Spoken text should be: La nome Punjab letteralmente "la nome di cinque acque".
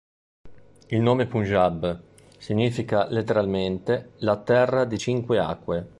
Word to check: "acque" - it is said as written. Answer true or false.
true